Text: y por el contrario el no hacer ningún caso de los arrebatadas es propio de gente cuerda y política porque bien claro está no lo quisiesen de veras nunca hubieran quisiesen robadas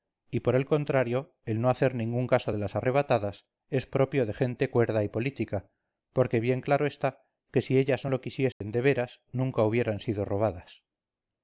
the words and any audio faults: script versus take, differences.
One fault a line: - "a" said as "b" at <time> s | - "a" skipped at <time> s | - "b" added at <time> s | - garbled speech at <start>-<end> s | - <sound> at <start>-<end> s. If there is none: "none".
- "los" said as "las" at 2.6 s
- "que si ellas" added at 7.5 s
- dropout at 8.5-8.6 s
- "quisiesen" said as "sido" at 10.0 s